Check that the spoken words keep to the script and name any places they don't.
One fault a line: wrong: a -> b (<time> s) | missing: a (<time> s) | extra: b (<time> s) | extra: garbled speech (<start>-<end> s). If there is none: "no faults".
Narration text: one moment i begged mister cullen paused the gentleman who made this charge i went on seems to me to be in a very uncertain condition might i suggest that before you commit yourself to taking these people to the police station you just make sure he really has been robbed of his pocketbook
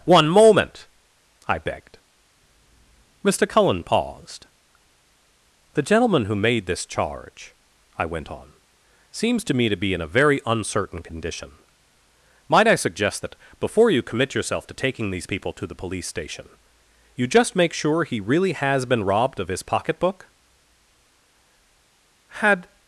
extra: had (22.4 s)